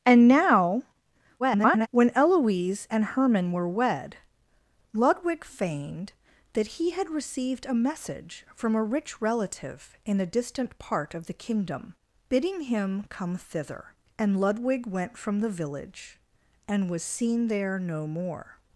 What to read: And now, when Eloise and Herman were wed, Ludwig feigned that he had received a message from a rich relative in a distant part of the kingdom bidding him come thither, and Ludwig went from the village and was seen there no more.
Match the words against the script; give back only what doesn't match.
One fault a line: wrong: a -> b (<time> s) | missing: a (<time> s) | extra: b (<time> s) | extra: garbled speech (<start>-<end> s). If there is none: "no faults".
extra: garbled speech (1.4-1.9 s)